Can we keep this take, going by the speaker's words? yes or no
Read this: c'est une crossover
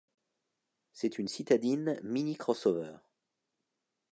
no